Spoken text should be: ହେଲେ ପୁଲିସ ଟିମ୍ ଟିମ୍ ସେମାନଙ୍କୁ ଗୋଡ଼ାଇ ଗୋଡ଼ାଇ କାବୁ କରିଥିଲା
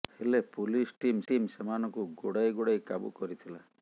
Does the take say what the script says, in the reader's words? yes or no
yes